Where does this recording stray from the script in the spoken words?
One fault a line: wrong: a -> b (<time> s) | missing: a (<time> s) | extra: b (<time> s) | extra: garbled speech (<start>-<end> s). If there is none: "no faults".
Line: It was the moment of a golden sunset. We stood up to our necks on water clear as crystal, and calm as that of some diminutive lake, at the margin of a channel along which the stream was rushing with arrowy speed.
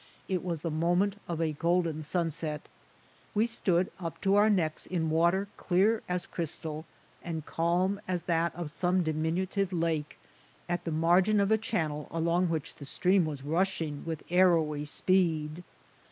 wrong: on -> in (4.9 s)